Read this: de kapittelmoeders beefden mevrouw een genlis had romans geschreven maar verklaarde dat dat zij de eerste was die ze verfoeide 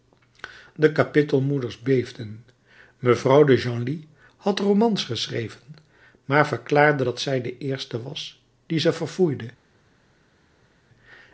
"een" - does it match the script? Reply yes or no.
no